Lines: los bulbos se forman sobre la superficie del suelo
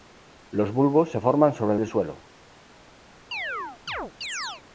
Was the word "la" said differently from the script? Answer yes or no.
yes